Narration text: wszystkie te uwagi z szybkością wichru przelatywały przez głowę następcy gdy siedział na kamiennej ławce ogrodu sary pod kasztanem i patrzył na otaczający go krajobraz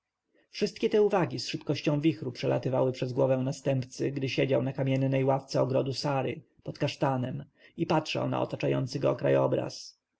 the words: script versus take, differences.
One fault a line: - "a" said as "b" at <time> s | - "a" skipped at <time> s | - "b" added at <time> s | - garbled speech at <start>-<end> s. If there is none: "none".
none